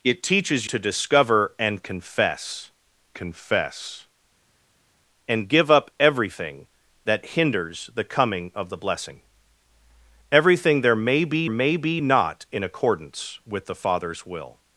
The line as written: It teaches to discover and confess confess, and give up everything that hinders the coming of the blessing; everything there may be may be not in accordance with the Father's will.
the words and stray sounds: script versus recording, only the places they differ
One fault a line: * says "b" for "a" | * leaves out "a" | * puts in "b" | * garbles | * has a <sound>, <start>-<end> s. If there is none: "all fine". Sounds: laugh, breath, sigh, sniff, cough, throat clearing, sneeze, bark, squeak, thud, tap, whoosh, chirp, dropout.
all fine